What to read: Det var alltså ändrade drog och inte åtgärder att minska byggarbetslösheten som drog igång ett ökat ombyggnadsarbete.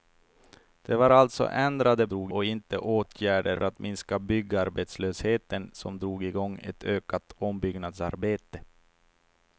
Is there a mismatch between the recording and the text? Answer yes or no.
no